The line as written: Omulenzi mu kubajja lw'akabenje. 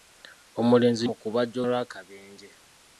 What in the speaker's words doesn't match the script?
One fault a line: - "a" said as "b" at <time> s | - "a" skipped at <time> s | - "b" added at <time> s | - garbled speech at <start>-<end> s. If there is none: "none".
none